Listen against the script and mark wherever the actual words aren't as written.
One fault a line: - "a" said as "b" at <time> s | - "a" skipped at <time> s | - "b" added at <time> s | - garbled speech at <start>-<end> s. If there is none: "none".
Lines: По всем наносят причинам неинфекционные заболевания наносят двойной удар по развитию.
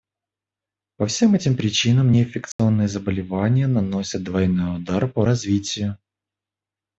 - "наносят" said as "этим" at 1.3 s